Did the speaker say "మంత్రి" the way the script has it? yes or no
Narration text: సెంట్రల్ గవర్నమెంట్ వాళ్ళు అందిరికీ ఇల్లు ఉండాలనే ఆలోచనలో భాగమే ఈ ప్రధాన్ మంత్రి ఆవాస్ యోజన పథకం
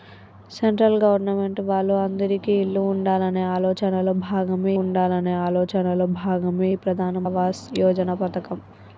no